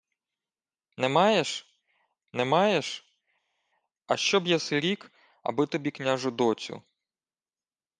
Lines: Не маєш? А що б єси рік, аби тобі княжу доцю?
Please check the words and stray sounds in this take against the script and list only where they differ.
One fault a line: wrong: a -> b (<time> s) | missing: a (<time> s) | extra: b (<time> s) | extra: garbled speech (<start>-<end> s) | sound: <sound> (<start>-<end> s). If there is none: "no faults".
extra: не маєш (2.3 s)